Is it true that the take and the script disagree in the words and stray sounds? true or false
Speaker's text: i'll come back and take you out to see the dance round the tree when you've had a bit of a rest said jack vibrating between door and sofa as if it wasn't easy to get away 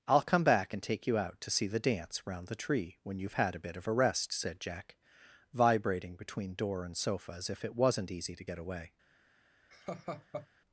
true